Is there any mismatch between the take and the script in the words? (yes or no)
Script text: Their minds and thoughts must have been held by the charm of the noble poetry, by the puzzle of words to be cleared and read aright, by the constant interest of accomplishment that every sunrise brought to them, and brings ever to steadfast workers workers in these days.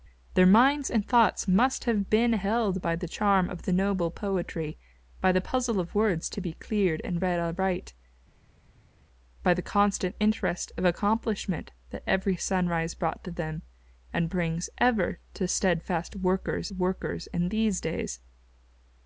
no